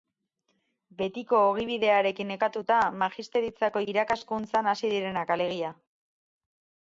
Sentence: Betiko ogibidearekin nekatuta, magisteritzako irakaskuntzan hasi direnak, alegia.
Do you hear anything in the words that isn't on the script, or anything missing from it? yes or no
no